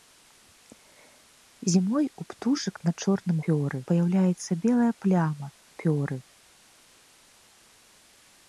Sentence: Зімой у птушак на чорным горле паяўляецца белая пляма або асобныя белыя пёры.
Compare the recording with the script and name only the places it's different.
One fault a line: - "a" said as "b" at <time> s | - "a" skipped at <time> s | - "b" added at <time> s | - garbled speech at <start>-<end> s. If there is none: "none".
- "горле" said as "пёры" at 3.5 s
- "або асобныя белыя" skipped at 5.5 s